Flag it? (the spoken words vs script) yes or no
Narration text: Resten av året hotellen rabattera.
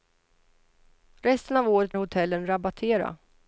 no